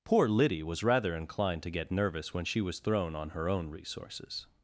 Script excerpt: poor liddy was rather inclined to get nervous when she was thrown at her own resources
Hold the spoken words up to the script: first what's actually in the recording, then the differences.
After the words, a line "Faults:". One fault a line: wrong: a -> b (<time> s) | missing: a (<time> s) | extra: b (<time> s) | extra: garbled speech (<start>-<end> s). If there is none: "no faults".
poor liddy was rather inclined to get nervous when she was thrown on her own resources
Faults:
wrong: at -> on (3.1 s)